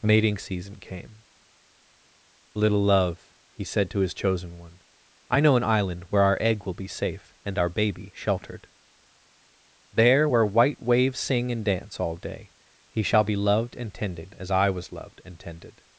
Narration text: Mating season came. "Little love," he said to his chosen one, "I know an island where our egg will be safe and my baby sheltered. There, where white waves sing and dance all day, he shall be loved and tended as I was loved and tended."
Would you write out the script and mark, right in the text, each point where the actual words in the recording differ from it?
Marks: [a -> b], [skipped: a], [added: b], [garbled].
Mating season came. "Little love," he said to his chosen one, "I know an island where our egg will be safe and [my -> our] baby sheltered. There, where white waves sing and dance all day, he shall be loved and tended as I was loved and tended."